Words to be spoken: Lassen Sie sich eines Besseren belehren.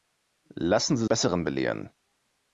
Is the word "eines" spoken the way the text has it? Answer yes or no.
no